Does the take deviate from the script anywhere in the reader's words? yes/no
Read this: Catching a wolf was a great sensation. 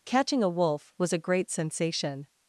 no